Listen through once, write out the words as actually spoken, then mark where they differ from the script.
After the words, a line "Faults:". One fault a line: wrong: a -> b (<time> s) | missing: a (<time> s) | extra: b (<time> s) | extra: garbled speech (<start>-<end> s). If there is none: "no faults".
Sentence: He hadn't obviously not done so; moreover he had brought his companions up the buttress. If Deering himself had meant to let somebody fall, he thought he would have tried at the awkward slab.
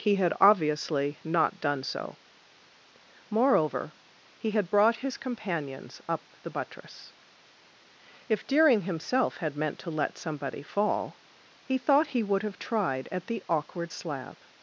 He had obviously not done so; moreover he had brought his companions up the buttress. If Deering himself had meant to let somebody fall, he thought he would have tried at the awkward slab.
Faults:
wrong: hadn't -> had (0.1 s)